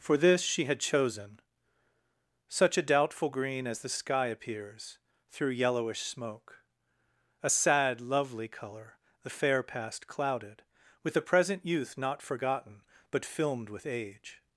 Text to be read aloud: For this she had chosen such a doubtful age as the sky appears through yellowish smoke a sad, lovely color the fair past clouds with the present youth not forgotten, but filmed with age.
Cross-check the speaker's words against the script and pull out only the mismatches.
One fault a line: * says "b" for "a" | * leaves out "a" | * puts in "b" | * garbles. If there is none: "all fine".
* says "green" for "age"
* says "clouded" for "clouds"